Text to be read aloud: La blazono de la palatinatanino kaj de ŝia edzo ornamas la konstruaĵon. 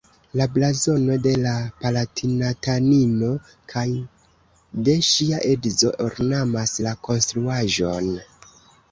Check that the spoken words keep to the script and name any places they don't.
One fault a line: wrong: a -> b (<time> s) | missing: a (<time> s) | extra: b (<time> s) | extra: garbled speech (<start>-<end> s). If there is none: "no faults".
no faults